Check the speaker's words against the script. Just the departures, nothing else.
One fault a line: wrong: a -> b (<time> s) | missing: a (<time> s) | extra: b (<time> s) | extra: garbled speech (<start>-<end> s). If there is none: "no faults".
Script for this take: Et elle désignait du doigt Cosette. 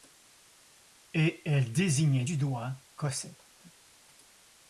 no faults